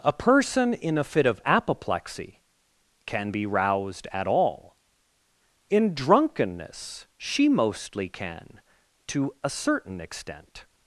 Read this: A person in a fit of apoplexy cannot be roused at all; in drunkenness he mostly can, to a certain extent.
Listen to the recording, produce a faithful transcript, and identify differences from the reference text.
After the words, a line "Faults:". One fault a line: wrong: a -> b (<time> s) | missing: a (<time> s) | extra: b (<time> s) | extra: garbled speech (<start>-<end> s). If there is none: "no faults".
A person in a fit of apoplexy can be roused at all; in drunkenness she mostly can, to a certain extent.
Faults:
wrong: cannot -> can (3.0 s)
wrong: he -> she (7.2 s)